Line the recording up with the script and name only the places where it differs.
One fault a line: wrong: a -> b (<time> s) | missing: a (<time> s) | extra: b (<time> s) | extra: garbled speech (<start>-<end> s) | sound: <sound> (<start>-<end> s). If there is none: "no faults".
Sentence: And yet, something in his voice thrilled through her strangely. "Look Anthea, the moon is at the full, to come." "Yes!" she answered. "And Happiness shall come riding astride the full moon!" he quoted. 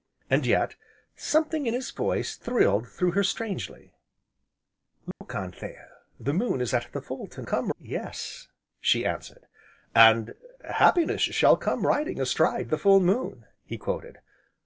sound: dropout (5.1-5.2 s)